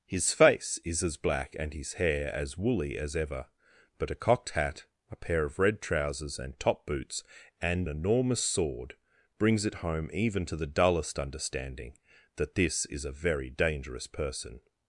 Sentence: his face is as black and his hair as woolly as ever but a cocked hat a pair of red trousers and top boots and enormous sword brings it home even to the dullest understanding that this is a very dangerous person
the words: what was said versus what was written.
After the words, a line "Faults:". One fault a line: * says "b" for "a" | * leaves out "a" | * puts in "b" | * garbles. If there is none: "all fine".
his face is as black and his hair as woolly as ever but a cocked hat a pair of red trousers and top boots and enormous sword brings it home even to the dullest understanding that this is a very dangerous person
Faults:
all fine